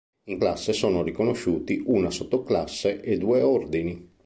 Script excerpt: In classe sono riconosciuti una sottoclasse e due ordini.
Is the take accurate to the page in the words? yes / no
yes